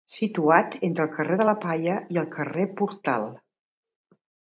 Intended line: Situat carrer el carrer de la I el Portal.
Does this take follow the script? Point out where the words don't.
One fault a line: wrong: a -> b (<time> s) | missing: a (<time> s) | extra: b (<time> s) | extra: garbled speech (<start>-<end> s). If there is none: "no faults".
wrong: carrer -> entre (0.9 s)
extra: Palla (1.6 s)
extra: carrer (2.4 s)